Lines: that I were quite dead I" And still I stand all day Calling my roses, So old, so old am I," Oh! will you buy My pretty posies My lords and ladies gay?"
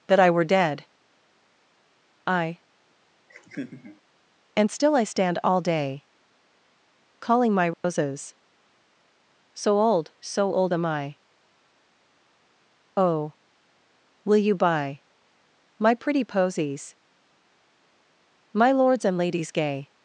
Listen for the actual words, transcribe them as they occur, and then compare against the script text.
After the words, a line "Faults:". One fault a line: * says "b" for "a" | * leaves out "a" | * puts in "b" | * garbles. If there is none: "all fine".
that I were dead I" And still I stand all day Calling my roses, So old, so old am I," Oh! will you buy My pretty posies My lords and ladies gay?"
Faults:
* leaves out "quite"